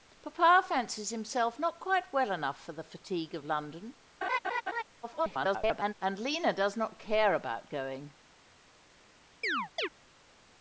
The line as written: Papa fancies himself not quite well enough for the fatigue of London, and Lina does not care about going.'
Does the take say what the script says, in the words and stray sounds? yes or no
no